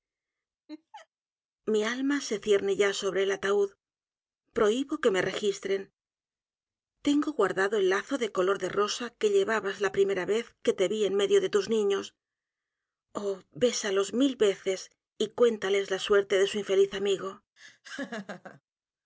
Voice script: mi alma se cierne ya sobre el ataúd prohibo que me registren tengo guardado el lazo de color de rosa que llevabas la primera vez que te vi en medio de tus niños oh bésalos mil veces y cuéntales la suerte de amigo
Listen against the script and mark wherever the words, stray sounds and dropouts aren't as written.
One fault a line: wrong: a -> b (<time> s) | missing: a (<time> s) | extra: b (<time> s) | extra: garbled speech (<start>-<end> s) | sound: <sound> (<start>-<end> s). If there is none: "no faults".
sound: laugh (0.7-1.1 s)
extra: su infeliz (16.5 s)
sound: laugh (17.6-18.6 s)